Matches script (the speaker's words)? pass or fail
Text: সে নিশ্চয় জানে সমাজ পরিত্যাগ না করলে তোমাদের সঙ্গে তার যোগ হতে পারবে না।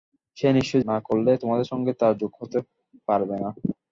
fail